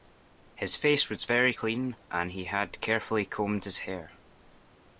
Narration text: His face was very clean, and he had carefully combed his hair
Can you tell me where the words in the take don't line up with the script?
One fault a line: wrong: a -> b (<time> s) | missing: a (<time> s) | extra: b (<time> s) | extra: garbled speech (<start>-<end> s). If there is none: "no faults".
no faults